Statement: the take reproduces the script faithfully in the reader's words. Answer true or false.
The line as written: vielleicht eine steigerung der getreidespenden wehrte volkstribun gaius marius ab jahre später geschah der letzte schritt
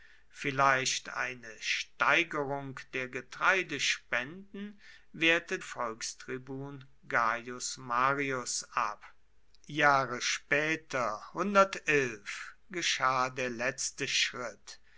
true